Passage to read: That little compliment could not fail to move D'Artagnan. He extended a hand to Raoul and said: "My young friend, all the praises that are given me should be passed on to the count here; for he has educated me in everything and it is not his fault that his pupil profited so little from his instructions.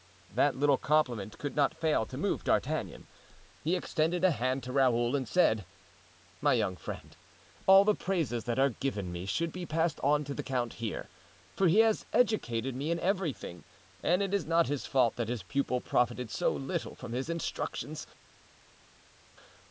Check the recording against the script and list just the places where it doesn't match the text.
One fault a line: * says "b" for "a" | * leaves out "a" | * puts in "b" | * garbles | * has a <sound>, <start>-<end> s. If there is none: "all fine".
all fine